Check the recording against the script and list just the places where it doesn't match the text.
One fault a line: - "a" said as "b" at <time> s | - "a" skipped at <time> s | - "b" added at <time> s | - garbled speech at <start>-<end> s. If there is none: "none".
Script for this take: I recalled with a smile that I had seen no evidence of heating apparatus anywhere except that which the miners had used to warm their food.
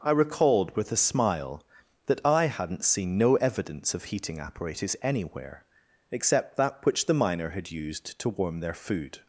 - "had" said as "hadn't" at 2.5 s
- "miners" said as "miner" at 7.1 s